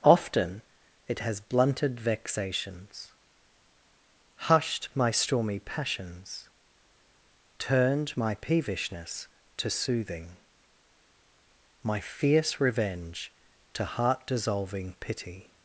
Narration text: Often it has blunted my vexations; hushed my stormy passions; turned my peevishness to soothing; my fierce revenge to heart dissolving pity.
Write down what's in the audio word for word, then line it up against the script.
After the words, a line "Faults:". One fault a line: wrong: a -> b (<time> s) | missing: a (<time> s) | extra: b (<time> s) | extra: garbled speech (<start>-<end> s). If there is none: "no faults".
Often it has blunted vexations; hushed my stormy passions; turned my peevishness to soothing; my fierce revenge to heart dissolving pity.
Faults:
missing: my (2.0 s)